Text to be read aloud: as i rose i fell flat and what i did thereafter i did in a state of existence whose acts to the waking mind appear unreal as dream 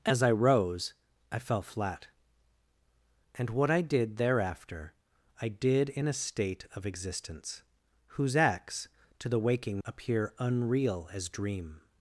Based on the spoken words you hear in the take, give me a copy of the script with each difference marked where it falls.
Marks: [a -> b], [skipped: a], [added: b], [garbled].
as i rose i fell flat and what i did thereafter i did in a state of existence whose acts to the waking [skipped: mind] appear unreal as dream